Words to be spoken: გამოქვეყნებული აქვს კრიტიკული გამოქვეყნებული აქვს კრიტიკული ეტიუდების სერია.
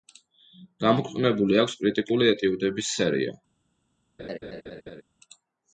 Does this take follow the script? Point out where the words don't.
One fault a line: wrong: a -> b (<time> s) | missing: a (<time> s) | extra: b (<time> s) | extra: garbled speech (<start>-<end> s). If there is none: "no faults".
missing: გამოქვეყნებული აქვს კრიტიკული (2.3 s)